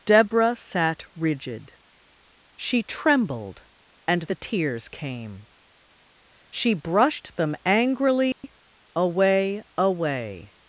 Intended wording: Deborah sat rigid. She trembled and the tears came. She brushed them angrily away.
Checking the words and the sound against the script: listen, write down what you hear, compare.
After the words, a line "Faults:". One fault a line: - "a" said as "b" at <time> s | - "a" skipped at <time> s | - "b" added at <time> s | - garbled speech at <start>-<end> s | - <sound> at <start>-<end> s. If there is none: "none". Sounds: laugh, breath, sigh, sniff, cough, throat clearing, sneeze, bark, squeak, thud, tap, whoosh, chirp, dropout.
Deborah sat rigid. She trembled and the tears came. She brushed them angrily away away.
Faults:
- dropout at 8.3-8.4 s
- "away" added at 9.8 s